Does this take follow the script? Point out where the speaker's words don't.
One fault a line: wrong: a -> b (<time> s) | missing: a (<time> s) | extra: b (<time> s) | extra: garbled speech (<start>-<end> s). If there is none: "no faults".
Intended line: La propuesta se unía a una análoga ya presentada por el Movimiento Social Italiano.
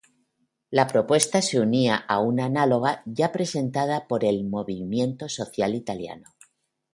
no faults